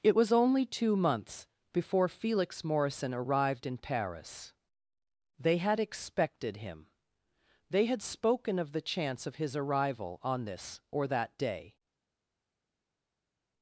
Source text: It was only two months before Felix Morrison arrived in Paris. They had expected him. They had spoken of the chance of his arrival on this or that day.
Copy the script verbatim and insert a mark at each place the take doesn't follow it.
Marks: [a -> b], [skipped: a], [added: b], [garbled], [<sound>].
It was only two months before Felix Morrison arrived in Paris. They had expected him. They had spoken of the chance of his arrival on this or that day.